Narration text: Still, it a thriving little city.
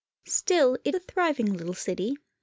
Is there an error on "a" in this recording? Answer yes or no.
no